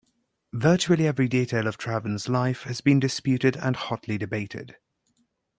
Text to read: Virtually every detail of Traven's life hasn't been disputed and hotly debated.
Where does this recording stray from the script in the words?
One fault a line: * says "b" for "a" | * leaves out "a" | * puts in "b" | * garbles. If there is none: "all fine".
* says "has" for "hasn't"